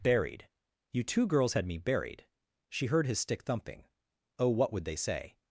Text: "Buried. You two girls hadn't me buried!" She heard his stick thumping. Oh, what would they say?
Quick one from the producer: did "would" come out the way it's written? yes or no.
yes